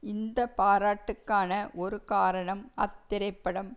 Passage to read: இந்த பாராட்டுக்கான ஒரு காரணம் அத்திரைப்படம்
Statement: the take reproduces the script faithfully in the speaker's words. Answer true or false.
true